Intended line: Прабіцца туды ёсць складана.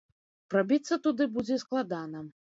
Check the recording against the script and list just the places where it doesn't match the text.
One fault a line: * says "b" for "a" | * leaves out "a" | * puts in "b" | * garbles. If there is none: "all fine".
* says "будзе" for "ёсць"